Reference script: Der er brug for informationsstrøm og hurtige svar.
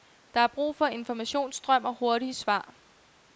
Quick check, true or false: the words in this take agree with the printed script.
true